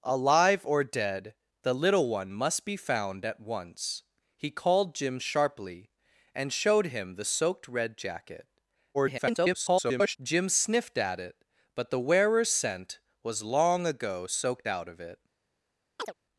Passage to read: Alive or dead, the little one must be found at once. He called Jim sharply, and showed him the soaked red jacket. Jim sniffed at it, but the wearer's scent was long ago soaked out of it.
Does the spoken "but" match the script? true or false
true